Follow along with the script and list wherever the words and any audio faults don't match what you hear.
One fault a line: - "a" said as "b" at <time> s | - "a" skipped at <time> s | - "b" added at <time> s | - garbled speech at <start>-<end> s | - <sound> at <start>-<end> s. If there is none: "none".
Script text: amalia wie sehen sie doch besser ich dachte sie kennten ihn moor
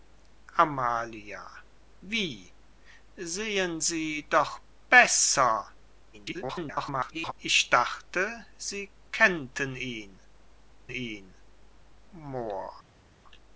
- garbled speech at 6.1-7.3 s
- "ihn" added at 10.9 s